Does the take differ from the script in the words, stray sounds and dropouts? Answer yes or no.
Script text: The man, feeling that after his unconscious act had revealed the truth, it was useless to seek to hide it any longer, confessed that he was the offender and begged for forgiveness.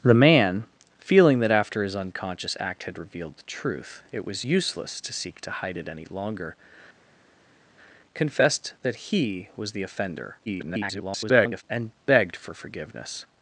yes